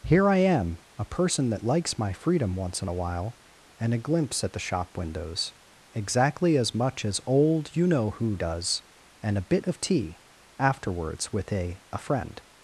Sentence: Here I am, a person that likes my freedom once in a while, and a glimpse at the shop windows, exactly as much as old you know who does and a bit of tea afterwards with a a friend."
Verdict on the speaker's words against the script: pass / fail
pass